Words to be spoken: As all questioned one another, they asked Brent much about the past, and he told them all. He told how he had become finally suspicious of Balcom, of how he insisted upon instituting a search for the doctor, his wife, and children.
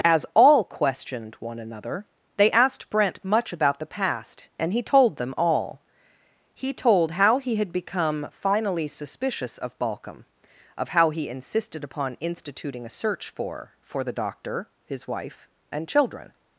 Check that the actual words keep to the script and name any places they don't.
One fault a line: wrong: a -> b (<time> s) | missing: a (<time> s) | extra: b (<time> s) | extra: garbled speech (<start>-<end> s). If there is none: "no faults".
extra: for (13.8 s)